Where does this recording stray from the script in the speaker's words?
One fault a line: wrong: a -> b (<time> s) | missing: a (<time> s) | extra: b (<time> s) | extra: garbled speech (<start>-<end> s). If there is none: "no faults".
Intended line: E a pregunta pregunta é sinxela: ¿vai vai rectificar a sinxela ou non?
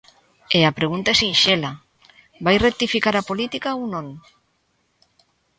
missing: pregunta (1.1 s)
missing: vai (2.6 s)
wrong: sinxela -> política (3.3 s)